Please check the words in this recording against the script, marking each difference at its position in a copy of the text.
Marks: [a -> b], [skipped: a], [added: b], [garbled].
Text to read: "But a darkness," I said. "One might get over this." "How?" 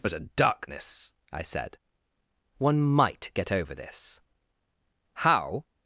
"But a darkness," I said. "One might get over this." "How?"